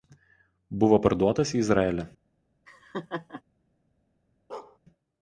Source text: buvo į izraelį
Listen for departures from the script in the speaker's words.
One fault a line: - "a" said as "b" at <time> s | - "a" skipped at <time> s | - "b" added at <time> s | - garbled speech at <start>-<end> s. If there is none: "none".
- "parduotas" added at 1.0 s